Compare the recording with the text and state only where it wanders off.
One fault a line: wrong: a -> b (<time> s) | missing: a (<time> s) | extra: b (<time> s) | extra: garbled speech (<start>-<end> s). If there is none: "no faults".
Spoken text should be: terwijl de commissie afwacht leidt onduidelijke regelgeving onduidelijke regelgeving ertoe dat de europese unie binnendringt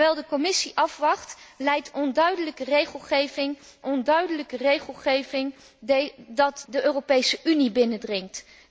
no faults